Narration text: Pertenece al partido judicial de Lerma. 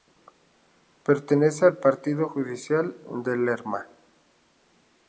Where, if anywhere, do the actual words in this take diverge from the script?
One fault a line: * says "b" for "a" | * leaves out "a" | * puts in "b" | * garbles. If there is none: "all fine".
all fine